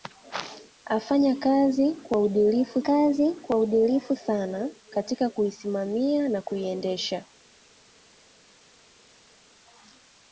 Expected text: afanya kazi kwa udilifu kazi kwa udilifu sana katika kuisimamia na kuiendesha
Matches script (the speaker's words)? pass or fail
pass